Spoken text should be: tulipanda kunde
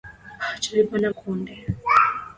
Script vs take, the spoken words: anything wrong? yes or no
no